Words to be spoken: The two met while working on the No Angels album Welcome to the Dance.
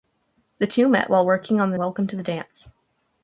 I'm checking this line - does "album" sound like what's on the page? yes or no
no